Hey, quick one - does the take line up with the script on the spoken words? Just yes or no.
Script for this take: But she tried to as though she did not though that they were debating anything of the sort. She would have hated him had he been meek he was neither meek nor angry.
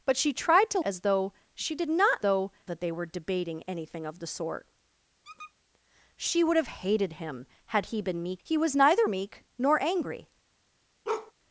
yes